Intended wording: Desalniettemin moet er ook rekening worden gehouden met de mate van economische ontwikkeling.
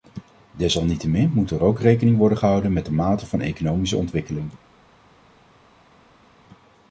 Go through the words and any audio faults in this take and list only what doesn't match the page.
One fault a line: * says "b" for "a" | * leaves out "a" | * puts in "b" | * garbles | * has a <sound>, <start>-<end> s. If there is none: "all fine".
all fine